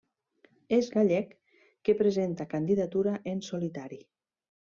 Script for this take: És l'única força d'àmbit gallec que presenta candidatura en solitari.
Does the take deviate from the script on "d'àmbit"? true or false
true